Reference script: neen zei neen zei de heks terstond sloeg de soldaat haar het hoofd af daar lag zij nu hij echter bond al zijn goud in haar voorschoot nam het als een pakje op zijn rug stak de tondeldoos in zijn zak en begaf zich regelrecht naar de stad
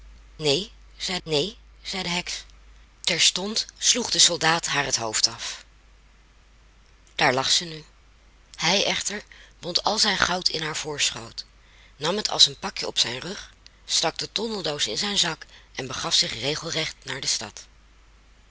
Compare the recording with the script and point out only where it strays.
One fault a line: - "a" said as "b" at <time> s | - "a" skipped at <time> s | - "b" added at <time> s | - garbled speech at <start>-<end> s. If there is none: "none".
none